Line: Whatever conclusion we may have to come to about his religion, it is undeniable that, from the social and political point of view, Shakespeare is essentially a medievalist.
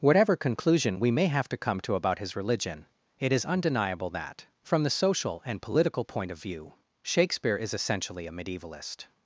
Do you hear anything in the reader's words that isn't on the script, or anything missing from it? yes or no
no